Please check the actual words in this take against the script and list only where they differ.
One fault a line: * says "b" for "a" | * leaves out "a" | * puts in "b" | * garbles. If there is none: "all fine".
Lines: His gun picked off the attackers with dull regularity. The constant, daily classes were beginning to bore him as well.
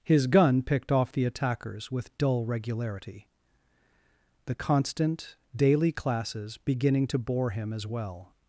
* leaves out "were"